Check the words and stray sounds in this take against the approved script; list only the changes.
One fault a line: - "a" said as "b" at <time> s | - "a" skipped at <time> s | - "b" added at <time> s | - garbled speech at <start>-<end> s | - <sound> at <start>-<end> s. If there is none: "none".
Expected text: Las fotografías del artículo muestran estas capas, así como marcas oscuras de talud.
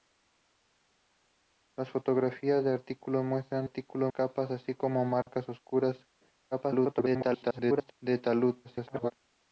- "estas" said as "artículo" at 3.6 s
- dropout at 5.2-5.3 s
- garbled speech at 6.5-7.9 s
- garbled speech at 8.6-9.1 s